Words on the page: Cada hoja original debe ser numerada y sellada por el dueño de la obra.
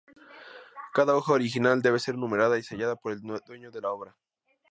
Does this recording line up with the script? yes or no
yes